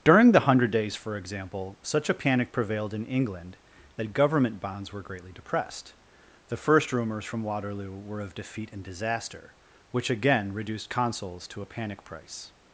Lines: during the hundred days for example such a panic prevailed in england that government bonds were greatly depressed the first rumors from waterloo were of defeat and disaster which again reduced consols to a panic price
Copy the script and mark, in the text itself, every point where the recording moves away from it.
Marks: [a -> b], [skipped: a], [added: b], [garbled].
during the hundred days for example such a panic prevailed in england that government bonds were greatly depressed the first rumors from waterloo were of defeat and disaster which again reduced consols to a panic price